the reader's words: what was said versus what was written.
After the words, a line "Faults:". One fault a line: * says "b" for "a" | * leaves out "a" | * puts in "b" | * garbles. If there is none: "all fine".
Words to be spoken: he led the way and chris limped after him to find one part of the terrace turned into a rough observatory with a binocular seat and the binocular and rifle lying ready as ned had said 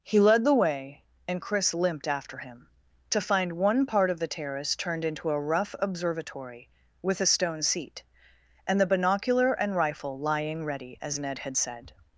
he led the way and chris limped after him to find one part of the terrace turned into a rough observatory with a stone seat and the binocular and rifle lying ready as ned had said
Faults:
* says "stone" for "binocular"